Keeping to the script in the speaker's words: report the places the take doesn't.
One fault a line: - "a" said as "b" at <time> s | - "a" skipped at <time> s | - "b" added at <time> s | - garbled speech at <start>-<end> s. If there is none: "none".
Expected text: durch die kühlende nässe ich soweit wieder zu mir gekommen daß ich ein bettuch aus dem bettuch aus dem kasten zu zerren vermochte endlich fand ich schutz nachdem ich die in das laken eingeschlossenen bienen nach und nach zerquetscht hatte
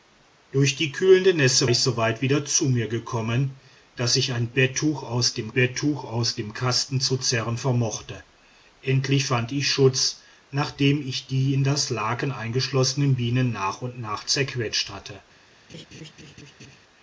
none